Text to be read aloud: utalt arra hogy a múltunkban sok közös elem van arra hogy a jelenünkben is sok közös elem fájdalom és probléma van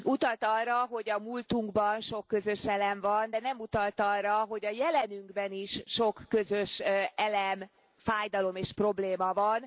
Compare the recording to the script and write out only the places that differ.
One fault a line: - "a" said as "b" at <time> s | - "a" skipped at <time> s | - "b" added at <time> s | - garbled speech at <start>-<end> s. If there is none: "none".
- "de nem utalt" added at 3.3 s